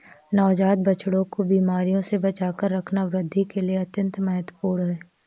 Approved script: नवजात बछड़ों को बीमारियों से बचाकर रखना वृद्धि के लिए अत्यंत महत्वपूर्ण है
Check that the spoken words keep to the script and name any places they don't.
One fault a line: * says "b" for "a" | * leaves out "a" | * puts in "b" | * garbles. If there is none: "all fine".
all fine